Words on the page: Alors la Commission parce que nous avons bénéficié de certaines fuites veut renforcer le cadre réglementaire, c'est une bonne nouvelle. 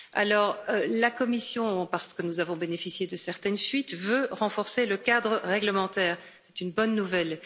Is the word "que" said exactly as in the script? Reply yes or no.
yes